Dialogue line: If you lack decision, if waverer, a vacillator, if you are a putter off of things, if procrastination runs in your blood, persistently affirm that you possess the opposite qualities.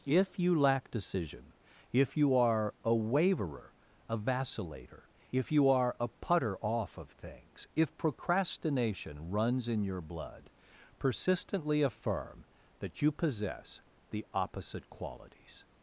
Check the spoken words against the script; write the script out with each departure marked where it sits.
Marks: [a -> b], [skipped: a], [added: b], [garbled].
If you lack decision, if [added: you are a] waverer, a vacillator, if you are a putter off of things, if procrastination runs in your blood, persistently affirm that you possess the opposite qualities.